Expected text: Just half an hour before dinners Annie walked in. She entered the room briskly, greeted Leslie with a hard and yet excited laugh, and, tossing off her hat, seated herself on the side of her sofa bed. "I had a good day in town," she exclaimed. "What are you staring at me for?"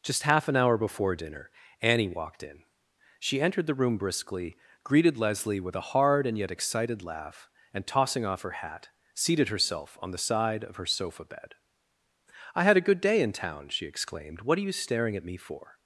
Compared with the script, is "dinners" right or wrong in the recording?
wrong